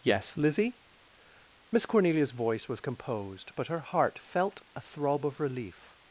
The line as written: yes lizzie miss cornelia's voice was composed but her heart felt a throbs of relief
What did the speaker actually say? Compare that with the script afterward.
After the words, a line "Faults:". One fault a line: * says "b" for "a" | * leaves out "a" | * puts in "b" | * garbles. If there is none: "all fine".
yes lizzie miss cornelia's voice was composed but her heart felt a throb of relief
Faults:
* says "throb" for "throbs"